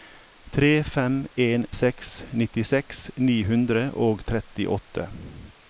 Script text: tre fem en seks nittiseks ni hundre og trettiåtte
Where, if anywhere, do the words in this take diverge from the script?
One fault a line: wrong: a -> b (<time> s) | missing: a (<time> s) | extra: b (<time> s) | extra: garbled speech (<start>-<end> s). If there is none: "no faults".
no faults